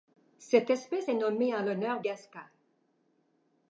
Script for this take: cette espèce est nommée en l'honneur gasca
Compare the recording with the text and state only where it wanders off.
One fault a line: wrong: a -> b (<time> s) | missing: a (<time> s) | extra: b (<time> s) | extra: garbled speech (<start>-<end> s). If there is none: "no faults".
no faults